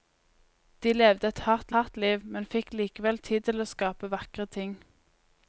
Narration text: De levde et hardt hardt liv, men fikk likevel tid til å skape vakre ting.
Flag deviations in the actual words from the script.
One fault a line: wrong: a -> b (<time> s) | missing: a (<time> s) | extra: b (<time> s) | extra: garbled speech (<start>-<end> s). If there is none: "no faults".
no faults